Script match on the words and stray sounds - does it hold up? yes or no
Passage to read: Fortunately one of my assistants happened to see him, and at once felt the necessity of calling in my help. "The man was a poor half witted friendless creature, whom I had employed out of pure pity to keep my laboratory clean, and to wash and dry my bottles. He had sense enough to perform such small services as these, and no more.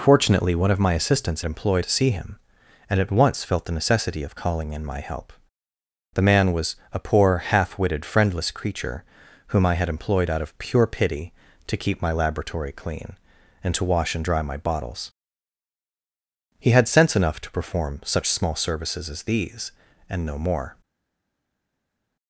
no